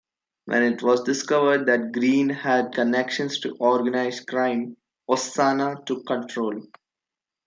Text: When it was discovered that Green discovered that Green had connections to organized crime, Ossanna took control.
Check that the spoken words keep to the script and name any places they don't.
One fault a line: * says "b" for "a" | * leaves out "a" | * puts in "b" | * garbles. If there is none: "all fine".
* leaves out "discovered that Green"